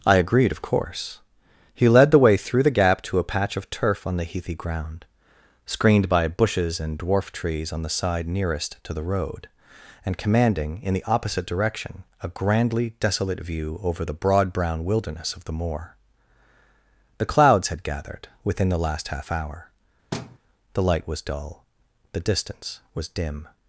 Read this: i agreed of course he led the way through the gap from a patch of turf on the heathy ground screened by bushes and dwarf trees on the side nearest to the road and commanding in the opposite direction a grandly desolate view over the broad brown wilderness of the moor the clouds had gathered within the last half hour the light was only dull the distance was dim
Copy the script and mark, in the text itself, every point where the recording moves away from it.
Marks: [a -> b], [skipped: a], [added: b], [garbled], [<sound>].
i agreed of course he led the way through the gap [from -> to] a patch of turf on the heathy ground screened by bushes and dwarf trees on the side nearest to the road and commanding in the opposite direction a grandly desolate view over the broad brown wilderness of the moor the clouds had gathered within the last half hour [thud] the light was [skipped: only] dull the distance was dim